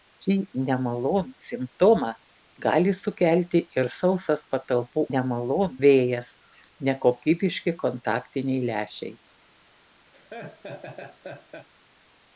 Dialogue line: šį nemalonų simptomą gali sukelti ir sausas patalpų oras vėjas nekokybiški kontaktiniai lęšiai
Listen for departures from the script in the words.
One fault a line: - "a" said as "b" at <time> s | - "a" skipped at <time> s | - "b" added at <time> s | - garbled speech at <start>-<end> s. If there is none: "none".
- "oras" said as "nemalonų" at 5.1 s